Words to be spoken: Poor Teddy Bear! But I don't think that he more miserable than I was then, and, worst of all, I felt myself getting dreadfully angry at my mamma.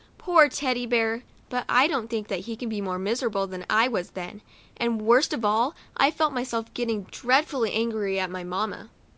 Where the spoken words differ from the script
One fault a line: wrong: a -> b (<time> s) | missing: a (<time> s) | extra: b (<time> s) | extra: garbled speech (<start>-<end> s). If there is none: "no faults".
extra: can be (2.5 s)